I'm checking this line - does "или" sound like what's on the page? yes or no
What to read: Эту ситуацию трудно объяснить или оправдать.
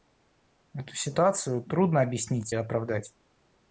no